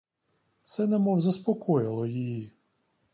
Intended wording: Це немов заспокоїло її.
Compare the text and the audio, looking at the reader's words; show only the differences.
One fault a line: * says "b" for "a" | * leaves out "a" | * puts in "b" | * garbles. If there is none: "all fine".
all fine